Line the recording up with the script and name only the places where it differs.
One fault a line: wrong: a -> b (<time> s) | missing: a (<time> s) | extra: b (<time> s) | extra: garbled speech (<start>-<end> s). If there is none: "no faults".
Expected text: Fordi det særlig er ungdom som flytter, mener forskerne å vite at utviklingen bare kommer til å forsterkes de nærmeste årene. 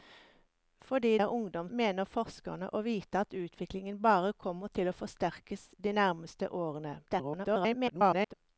missing: det særlig (1.2 s)
missing: som flytter (1.7 s)
extra: garbled speech (7.1-8.3 s)